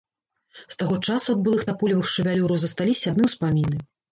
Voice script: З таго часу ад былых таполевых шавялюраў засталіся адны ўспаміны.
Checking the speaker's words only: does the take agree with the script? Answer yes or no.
yes